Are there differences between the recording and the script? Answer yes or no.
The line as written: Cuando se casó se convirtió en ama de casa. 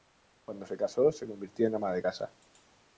no